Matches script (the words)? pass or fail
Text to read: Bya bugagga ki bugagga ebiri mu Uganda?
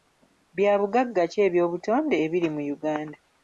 fail